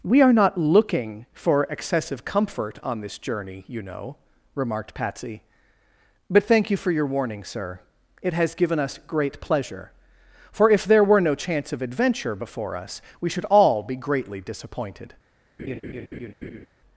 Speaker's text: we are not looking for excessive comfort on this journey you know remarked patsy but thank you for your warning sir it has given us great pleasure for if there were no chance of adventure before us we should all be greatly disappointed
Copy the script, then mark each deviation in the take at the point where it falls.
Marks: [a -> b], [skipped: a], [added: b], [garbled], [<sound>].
we are not looking for excessive comfort on this journey you know remarked patsy but thank you for your warning sir it has given us great pleasure for if there were no chance of adventure before us we should all be greatly disappointed [laugh]